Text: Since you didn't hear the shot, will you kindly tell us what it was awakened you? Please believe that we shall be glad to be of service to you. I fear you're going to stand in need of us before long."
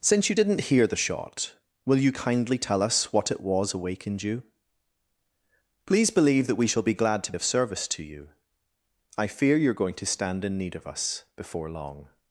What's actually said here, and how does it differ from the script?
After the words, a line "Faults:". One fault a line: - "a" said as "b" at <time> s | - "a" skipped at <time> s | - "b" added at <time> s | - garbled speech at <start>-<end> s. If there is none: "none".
Since you didn't hear the shot, will you kindly tell us what it was awakened you? Please believe that we shall be glad to of service to you. I fear you're going to stand in need of us before long."
Faults:
- "be" skipped at 7.3 s